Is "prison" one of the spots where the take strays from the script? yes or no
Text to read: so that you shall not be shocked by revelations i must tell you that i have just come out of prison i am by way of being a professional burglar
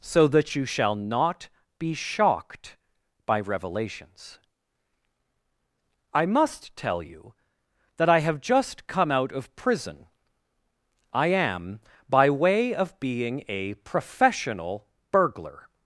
no